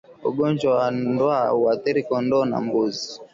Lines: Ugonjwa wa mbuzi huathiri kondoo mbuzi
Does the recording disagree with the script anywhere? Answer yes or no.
yes